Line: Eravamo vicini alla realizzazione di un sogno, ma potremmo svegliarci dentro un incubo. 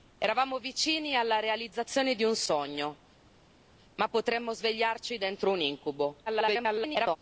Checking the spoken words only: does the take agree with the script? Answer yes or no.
no